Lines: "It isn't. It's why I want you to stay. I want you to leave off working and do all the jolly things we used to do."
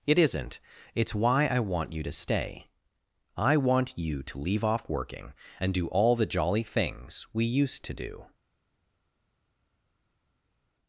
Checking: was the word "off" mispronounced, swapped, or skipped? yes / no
no